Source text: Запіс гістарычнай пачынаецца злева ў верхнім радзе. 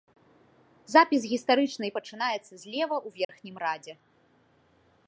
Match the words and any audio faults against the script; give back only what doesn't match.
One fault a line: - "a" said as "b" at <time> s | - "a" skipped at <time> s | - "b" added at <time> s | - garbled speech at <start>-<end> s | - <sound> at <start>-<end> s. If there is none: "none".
- dropout at 3.2-3.3 s